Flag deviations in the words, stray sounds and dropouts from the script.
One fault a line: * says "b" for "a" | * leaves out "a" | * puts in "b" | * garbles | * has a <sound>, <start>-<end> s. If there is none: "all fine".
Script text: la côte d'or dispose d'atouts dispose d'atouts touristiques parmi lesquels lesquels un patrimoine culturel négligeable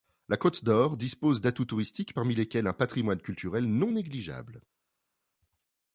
* leaves out "dispose d'atouts"
* leaves out "lesquels"
* puts in "non"